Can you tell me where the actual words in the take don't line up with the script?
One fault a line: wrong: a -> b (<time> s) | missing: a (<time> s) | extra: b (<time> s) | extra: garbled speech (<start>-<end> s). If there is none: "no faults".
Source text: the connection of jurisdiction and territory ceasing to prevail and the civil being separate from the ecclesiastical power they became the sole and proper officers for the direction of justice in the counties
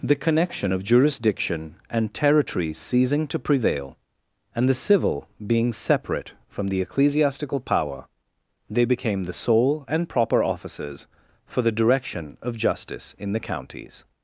no faults